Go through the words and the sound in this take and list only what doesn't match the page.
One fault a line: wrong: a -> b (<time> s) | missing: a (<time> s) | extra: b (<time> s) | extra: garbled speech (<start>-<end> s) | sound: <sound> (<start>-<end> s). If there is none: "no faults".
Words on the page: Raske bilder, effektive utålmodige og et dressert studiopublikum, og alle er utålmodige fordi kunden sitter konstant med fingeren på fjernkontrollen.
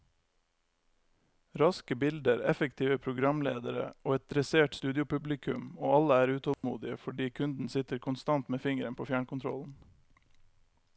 wrong: utålmodige -> programledere (3.0 s)
sound: dropout (6.5-6.6 s)